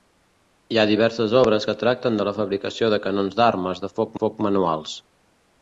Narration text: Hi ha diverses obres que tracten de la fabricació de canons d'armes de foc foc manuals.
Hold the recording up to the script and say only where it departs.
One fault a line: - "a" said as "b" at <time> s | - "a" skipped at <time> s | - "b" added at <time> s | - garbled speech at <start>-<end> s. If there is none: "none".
none